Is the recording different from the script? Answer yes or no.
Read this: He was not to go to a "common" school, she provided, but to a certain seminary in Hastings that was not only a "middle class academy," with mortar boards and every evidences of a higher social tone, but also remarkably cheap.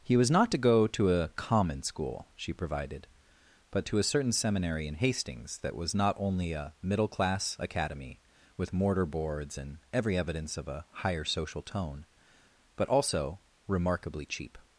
yes